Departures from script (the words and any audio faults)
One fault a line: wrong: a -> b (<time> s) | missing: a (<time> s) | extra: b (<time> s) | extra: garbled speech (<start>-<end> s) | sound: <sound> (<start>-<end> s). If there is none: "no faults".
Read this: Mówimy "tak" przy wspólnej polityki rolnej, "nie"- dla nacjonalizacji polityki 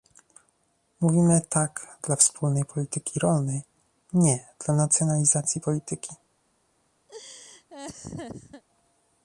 wrong: przy -> dla (2.0 s)
sound: laugh (7.1-8.6 s)